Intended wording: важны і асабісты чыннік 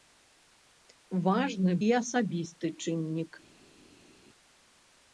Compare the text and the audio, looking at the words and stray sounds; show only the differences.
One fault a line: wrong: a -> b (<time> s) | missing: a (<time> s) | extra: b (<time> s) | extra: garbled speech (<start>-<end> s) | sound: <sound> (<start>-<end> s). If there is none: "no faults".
no faults